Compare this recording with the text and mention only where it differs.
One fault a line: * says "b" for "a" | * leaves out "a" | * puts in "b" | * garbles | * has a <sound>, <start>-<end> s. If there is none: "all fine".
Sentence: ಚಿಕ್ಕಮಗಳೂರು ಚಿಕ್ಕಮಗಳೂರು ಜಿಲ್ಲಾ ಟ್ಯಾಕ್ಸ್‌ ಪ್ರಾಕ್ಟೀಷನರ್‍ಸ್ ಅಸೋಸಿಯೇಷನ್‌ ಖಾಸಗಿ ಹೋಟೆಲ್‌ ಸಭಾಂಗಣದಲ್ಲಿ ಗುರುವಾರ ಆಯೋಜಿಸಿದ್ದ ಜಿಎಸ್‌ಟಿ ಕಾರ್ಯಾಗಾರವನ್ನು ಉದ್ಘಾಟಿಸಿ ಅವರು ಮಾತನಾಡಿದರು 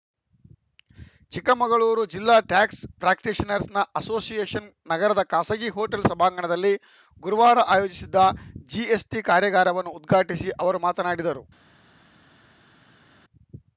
* leaves out "ಚಿಕ್ಕಮಗಳೂರು"
* puts in "ನಗರದ"